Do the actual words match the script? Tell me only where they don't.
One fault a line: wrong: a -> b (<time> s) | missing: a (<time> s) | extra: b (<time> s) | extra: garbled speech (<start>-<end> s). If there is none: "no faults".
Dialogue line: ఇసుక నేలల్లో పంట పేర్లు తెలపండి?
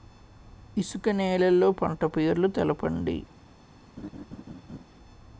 no faults